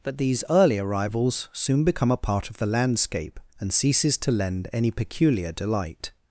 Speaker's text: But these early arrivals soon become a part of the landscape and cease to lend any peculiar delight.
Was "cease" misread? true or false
true